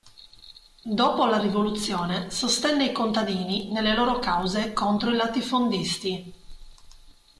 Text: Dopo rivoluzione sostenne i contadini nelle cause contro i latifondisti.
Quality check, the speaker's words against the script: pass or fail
fail